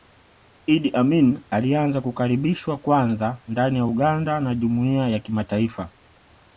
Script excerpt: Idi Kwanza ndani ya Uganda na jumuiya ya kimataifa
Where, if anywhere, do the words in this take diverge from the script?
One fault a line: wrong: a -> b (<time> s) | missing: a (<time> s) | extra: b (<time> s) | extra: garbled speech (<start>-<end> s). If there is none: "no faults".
extra: Amin alianza kukaribishwa (0.9 s)